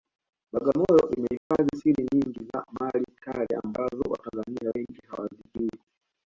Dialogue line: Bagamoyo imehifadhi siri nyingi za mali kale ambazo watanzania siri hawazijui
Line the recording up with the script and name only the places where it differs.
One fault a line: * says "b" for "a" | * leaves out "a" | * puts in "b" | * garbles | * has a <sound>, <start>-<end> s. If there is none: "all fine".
* has a dropout, 1.4-1.5 s
* says "wengi" for "siri"